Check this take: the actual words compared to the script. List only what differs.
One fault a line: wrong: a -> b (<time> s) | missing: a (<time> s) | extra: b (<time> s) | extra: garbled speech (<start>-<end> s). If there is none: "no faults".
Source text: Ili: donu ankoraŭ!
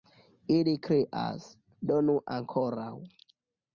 extra: krias (0.9 s)